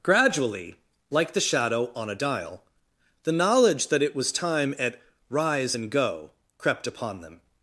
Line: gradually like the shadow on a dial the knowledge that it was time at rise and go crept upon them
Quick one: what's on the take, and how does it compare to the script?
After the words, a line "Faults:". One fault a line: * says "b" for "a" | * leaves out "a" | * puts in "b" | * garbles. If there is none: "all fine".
gradually like the shadow on a dial the knowledge that it was time at rise and go crept upon them
Faults:
all fine